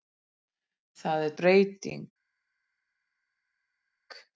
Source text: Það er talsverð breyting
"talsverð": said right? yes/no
no